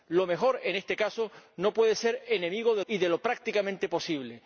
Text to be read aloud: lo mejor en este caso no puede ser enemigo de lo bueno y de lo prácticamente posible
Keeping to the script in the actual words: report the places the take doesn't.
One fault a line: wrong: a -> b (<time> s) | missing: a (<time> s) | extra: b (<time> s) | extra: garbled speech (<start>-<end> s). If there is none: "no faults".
missing: lo bueno (2.8 s)